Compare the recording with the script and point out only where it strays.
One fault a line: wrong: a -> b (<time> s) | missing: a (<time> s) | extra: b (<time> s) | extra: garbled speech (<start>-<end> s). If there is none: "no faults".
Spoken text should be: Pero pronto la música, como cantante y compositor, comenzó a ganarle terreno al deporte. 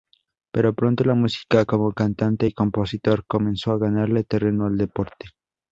no faults